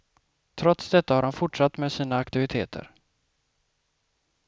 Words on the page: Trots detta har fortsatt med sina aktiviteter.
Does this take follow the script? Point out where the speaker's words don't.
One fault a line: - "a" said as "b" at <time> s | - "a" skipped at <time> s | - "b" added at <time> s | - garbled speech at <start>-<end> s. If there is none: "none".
- "han" added at 1.2 s